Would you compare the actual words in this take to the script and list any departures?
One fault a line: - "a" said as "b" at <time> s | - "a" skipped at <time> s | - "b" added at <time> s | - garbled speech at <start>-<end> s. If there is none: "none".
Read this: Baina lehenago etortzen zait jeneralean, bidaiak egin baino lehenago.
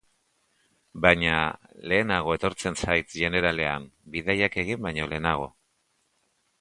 none